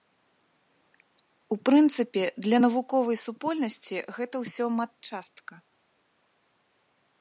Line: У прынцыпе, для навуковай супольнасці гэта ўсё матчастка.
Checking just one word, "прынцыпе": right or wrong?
right